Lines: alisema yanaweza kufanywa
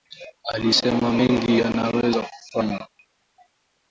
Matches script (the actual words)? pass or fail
fail